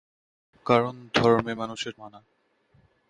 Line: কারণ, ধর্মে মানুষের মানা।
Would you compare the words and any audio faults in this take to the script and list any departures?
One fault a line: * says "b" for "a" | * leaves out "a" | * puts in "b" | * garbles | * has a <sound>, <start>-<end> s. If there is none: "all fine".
all fine